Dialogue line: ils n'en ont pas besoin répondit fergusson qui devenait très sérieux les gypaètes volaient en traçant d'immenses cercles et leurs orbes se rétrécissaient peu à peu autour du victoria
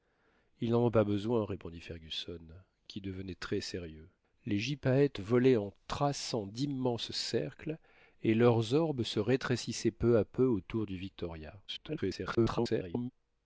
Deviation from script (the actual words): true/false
true